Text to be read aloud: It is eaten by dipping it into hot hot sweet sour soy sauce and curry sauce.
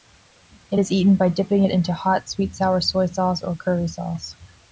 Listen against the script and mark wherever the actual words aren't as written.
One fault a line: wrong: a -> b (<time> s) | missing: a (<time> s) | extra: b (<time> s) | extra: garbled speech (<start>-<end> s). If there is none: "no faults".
missing: hot (2.3 s)
wrong: and -> or (3.4 s)